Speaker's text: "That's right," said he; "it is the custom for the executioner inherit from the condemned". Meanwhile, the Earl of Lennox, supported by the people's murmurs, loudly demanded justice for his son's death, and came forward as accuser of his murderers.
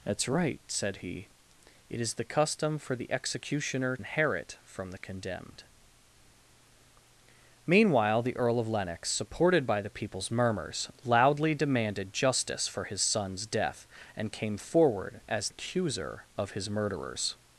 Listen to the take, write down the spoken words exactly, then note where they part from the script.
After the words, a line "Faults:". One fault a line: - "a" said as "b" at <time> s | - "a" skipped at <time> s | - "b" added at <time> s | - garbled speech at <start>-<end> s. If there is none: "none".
"That's right," said he; "it is the custom for the executioner inherit from the condemned". Meanwhile, the Earl of Lennox, supported by the people's murmurs, loudly demanded justice for his son's death, and came forward as accuser of his murderers.
Faults:
none